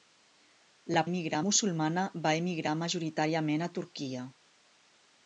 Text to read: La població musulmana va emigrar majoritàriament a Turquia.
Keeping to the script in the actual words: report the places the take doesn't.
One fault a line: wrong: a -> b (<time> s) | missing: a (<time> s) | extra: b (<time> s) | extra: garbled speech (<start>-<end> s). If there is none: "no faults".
wrong: població -> emigrar (1.1 s)